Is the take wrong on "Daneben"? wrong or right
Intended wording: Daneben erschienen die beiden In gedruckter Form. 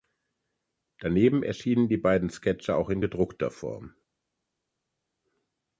right